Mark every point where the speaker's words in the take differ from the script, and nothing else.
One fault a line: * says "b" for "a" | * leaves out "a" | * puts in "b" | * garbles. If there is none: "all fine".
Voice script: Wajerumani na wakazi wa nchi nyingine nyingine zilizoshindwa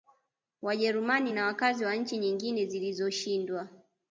* leaves out "nyingine"